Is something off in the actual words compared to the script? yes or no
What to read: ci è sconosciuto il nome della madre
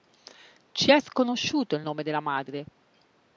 no